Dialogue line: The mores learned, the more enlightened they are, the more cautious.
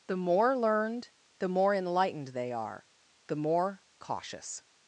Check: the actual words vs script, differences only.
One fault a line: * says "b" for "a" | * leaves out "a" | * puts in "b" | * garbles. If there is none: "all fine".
* says "more" for "mores"